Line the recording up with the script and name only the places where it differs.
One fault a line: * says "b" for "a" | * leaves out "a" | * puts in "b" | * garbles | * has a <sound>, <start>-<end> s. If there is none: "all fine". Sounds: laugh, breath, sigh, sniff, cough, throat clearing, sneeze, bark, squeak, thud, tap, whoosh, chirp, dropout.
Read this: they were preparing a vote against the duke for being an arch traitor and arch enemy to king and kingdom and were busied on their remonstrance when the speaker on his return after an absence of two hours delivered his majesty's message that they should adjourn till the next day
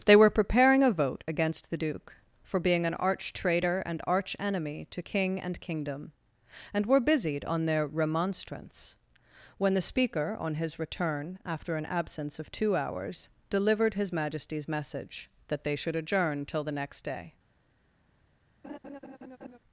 * has a laugh, 18.6-19.6 s